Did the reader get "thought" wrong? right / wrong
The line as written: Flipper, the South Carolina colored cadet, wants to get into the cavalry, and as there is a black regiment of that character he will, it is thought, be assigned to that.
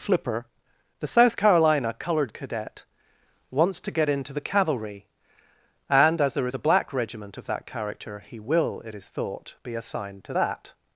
right